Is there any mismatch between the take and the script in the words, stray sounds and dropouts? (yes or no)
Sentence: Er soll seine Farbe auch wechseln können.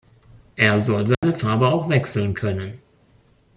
yes